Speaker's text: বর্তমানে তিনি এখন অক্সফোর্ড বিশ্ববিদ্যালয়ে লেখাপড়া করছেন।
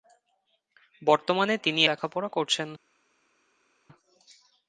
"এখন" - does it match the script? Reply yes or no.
no